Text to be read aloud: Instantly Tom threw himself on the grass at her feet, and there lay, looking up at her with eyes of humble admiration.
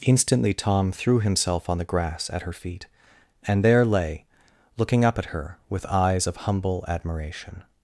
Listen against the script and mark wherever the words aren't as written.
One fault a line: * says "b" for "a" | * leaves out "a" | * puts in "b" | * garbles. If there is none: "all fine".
all fine